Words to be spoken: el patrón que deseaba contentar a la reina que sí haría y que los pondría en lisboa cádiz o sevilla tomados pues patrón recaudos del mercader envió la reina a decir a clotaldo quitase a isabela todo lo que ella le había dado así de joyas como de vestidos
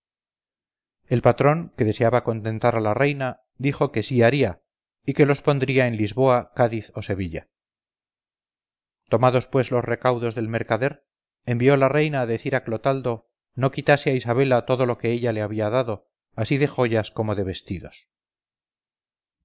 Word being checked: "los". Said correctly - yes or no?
yes